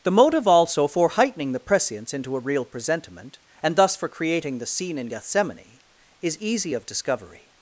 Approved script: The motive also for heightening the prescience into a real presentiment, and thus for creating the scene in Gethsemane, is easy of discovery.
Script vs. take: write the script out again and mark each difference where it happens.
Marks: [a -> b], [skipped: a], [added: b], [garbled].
The motive also for heightening the prescience into a real presentiment, and thus for creating the scene in Gethsemane, is easy of discovery.